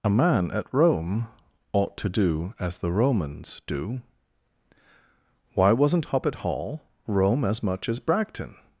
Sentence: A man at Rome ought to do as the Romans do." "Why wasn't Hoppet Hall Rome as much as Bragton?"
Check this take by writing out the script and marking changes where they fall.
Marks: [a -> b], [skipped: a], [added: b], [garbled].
A man at Rome ought to do as the Romans do." "Why wasn't Hoppet Hall Rome as much as Bragton?"